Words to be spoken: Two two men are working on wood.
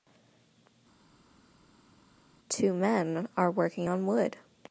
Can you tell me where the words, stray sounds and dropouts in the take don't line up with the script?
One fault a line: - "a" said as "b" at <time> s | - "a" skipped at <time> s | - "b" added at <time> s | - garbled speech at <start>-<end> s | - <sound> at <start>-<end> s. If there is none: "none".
- "two" skipped at 2.7 s